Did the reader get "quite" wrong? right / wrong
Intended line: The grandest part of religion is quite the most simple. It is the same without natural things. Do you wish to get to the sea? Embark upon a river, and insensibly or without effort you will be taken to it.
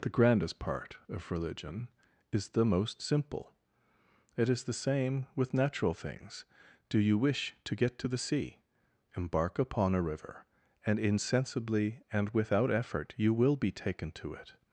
wrong